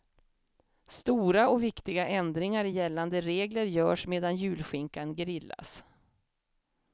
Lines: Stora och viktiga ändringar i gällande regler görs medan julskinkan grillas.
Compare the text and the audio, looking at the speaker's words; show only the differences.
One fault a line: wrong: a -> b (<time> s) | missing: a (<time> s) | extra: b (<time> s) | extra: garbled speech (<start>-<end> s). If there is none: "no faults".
no faults